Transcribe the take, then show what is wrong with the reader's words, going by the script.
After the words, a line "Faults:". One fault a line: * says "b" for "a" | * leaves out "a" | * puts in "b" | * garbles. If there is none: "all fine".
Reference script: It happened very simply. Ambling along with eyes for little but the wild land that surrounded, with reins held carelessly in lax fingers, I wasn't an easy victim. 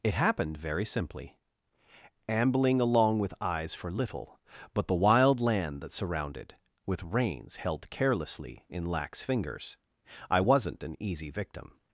It happened very simply. Ambling along with eyes for little but the wild land that surrounded, with reins held carelessly in lax fingers, I wasn't an easy victim.
Faults:
all fine